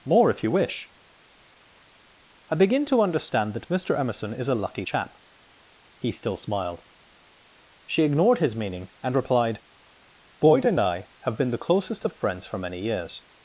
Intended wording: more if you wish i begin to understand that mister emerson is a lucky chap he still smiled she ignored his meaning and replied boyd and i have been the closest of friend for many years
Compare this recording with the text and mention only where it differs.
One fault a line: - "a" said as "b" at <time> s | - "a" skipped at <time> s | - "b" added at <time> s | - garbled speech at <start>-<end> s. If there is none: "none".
- "friend" said as "friends" at 12.1 s